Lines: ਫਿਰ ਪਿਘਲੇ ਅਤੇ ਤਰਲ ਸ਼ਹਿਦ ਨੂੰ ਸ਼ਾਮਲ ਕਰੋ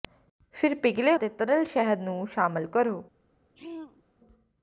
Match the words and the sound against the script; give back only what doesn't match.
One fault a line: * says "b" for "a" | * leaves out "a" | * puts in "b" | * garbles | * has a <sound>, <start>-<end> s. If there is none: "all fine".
* has a throat clearing, 3.6-4.0 s